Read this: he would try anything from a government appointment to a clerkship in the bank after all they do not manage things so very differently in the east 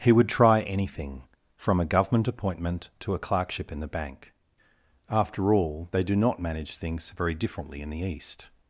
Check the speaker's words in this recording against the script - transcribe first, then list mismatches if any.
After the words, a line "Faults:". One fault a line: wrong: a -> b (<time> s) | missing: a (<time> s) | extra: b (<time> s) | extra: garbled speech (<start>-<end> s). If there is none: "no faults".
he would try anything from a government appointment to a clerkship in the bank after all they do not manage things very differently in the east
Faults:
missing: so (7.1 s)